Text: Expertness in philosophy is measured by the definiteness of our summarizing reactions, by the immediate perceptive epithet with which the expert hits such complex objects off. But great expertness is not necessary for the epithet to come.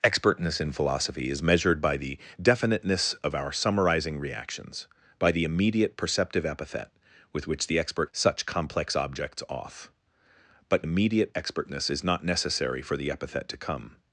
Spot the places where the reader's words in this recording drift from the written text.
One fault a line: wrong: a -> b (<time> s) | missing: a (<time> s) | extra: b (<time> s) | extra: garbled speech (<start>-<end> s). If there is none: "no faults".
missing: hits (8.1 s)
wrong: great -> immediate (10.8 s)